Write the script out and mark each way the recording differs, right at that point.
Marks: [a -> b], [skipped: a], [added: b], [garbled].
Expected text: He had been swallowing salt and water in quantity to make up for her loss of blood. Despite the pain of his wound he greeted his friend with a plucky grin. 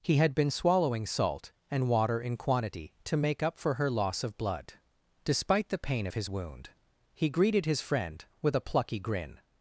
He had been swallowing salt and water in quantity to make up for her loss of blood. Despite the pain of his wound he greeted his friend with a plucky grin.